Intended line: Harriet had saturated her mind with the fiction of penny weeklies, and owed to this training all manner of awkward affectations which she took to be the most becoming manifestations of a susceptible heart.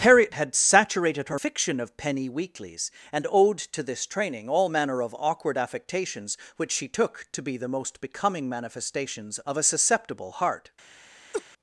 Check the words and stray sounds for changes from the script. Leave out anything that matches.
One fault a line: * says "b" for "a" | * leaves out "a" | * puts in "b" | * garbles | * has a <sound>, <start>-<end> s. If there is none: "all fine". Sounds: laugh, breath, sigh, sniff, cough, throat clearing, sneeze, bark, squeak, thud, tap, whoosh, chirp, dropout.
* leaves out "mind with the"
* has a laugh, 11.3-11.4 s